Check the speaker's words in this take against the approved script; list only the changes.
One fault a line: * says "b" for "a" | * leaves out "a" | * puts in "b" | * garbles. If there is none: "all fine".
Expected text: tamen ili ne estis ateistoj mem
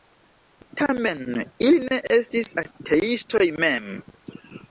all fine